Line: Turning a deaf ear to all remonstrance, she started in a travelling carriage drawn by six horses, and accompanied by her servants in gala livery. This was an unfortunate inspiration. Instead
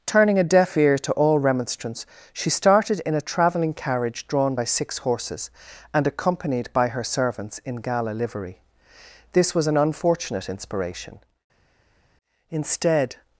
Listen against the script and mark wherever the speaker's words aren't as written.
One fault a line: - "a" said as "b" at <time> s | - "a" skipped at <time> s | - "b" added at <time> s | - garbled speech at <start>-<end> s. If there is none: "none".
none